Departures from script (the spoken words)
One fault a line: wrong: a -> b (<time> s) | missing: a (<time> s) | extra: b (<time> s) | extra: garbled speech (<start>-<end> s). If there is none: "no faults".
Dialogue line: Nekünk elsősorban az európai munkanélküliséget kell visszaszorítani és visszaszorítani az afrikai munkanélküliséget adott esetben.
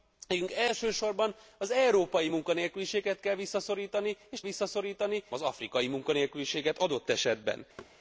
no faults